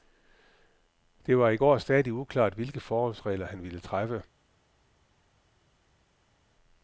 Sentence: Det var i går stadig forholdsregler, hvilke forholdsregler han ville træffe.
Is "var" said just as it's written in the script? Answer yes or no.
yes